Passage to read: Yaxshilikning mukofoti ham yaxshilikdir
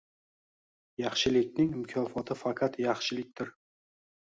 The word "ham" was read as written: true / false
false